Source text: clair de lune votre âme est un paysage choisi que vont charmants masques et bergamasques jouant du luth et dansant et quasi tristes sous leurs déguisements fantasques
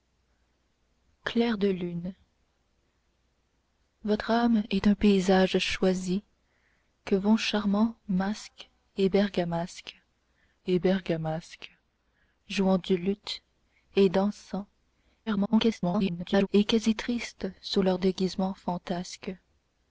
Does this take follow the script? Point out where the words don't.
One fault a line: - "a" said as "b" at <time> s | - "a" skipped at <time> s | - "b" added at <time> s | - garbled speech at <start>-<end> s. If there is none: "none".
- "et bergamasques" added at 10.7 s
- garbled speech at 15.3-16.5 s